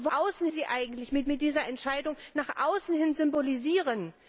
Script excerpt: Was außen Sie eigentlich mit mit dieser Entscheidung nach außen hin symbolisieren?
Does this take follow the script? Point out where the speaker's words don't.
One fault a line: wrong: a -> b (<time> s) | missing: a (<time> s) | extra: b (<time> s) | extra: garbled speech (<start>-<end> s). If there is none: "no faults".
no faults